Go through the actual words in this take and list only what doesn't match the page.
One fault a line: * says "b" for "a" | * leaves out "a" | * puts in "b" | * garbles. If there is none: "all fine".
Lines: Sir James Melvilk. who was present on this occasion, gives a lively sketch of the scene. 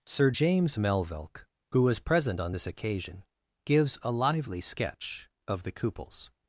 * says "cupels" for "scene"